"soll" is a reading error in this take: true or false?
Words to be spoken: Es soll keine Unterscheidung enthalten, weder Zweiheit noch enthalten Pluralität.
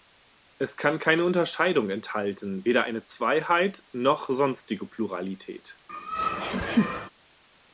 true